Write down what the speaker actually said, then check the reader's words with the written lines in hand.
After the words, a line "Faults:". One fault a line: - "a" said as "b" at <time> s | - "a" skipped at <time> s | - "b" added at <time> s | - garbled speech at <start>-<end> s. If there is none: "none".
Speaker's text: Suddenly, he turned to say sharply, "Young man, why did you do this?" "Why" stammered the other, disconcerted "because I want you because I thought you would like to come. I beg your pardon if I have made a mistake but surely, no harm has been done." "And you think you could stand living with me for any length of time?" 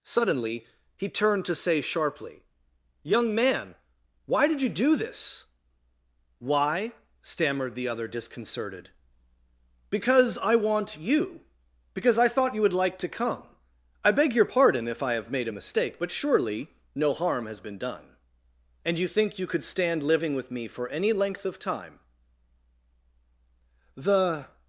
Suddenly, he turned to say sharply, "Young man, why did you do this?" "Why" stammered the other, disconcerted "because I want you because I thought you would like to come. I beg your pardon if I have made a mistake but surely, no harm has been done." "And you think you could stand living with me for any length of time?" The
Faults:
- "The" added at 24.0 s